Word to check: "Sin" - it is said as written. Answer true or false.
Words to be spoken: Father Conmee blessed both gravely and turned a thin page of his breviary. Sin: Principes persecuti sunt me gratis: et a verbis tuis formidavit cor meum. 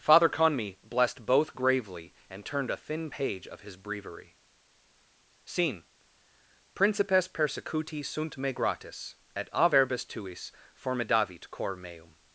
false